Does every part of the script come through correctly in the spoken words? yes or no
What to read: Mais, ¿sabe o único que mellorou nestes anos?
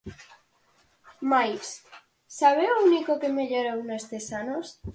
yes